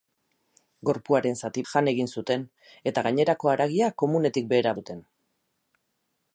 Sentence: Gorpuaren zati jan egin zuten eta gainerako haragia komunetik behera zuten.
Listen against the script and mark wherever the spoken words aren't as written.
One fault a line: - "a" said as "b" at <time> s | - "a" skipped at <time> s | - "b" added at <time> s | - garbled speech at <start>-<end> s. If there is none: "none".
none